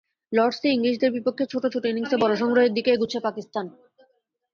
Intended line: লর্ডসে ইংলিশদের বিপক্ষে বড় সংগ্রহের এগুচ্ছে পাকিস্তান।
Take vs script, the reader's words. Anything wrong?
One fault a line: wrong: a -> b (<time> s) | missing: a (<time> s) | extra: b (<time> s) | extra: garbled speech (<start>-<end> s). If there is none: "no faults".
extra: ছোট ছোট ইনিংসে (1.4 s)
extra: দিকে (2.8 s)